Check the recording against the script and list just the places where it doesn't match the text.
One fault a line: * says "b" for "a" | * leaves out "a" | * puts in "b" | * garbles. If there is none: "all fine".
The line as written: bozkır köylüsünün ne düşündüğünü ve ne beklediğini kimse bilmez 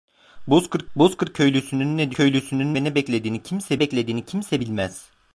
* puts in "bozkır"
* says "köylüsünün" for "düşündüğünü"
* puts in "beklediğini kimse"